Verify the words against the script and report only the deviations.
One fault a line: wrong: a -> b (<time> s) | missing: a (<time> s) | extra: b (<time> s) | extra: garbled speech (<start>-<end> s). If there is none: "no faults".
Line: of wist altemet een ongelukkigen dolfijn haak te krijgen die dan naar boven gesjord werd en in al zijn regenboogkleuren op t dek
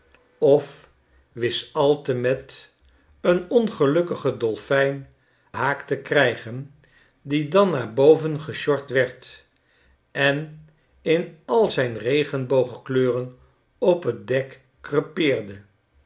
no faults